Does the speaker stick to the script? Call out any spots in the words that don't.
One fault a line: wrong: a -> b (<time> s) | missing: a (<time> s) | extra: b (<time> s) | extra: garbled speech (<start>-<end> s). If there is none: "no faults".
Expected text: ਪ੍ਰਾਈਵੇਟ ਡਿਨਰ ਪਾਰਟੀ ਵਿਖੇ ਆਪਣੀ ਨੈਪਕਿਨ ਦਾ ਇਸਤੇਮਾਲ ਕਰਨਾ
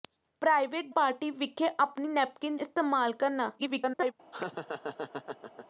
missing: ਡਿਨਰ (0.8 s)
missing: ਦਾ (2.6 s)
extra: garbled speech (3.6-4.1 s)